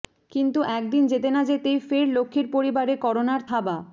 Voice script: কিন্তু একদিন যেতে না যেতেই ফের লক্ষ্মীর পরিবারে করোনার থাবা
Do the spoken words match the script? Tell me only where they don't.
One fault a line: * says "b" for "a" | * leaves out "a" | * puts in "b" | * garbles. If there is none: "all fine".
all fine